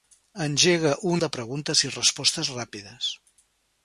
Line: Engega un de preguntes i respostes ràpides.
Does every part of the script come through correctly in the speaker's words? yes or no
yes